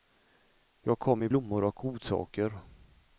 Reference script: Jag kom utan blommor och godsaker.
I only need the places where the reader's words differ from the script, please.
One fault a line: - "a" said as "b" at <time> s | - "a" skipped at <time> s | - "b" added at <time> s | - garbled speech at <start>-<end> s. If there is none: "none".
- "utan" said as "med" at 1.2 s